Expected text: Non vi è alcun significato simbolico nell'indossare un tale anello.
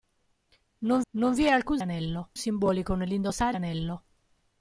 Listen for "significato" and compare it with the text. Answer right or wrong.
wrong